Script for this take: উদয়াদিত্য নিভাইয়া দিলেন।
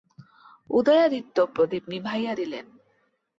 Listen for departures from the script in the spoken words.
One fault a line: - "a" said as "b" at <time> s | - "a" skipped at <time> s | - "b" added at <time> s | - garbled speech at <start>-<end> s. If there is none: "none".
- "প্রদীপ" added at 1.6 s